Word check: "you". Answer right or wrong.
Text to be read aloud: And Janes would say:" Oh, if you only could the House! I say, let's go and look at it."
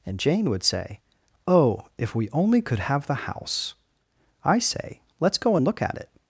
wrong